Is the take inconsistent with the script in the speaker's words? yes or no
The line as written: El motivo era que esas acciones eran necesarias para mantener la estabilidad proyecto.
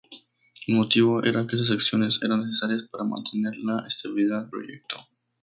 no